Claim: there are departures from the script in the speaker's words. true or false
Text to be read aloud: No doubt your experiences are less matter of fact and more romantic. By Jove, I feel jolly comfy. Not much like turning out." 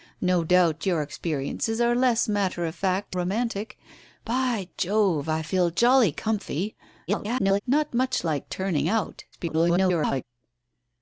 true